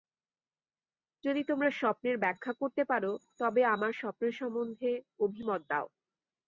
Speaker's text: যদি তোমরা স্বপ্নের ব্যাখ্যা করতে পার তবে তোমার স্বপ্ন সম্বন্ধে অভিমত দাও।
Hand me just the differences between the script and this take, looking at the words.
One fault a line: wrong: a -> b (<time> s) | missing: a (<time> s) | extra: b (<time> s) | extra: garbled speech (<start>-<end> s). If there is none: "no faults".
wrong: তোমার -> আমার (3.7 s)